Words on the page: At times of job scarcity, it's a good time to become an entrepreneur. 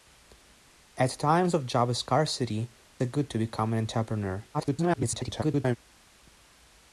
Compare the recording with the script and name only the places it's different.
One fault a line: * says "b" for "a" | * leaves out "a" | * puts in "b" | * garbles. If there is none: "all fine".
* leaves out "it's"
* leaves out "time"
* garbles